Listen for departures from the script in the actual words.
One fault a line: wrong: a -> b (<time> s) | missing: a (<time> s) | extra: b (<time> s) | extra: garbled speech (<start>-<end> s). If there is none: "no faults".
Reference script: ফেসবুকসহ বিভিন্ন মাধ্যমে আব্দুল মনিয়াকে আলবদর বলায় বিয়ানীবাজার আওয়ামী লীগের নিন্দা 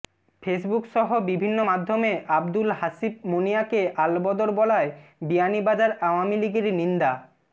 extra: হাসিব (2.8 s)